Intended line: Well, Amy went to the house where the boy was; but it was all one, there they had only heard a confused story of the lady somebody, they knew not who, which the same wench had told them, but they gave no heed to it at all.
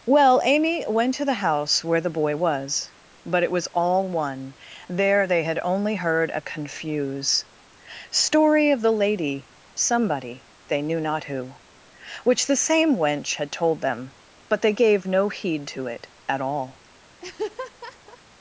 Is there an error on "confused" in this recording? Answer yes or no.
yes